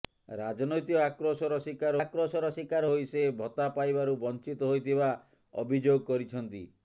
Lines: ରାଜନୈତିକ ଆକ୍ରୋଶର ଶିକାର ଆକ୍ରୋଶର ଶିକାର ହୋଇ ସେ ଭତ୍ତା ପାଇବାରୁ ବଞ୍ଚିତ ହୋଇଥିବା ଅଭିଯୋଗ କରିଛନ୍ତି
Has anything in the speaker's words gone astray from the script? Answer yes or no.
no